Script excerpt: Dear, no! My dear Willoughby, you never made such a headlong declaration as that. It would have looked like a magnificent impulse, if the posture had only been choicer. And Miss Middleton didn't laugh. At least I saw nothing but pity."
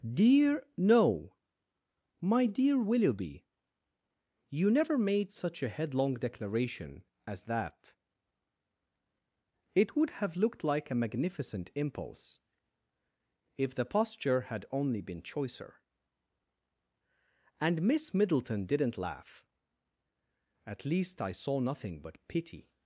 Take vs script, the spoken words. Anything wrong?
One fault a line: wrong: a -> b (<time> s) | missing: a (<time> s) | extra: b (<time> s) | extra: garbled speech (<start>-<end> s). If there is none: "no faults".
no faults